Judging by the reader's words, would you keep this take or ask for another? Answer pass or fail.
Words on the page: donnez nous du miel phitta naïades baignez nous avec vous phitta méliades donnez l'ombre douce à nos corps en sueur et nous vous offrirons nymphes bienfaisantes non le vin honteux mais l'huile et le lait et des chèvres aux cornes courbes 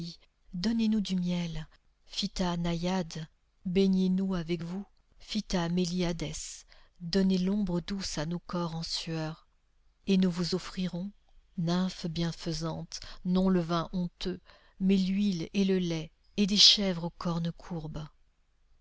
pass